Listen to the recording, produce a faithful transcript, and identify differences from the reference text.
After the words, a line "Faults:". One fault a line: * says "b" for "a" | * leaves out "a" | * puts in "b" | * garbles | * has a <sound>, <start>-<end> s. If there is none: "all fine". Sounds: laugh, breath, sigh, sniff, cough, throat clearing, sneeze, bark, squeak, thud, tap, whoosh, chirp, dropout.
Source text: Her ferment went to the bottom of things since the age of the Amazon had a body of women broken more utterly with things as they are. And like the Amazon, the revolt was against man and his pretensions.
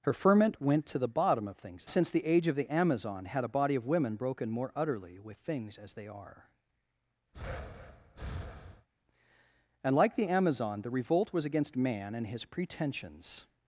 Her ferment went to the bottom of things since the age of the Amazon had a body of women broken more utterly with things as they are. And like the Amazon, the revolt was against man and his pretensions.
Faults:
* has a breath, 7.3-8.9 s